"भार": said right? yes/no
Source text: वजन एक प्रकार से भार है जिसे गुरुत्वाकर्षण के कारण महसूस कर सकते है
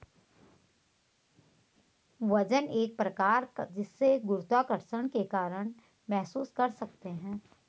no